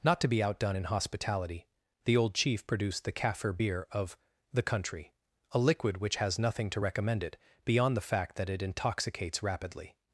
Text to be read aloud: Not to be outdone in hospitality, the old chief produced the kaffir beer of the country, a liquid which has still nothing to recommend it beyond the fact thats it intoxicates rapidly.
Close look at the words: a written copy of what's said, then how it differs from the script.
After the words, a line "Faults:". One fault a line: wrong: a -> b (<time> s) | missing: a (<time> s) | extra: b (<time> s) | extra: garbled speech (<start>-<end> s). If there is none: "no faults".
Not to be outdone in hospitality, the old chief produced the kaffir beer of the country, a liquid which has nothing to recommend it beyond the fact that it intoxicates rapidly.
Faults:
missing: still (6.4 s)
wrong: thats -> that (8.4 s)